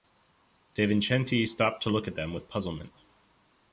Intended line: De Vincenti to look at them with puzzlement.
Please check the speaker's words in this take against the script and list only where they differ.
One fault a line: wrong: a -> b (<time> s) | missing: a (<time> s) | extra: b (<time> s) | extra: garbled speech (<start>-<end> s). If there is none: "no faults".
extra: stopped (1.4 s)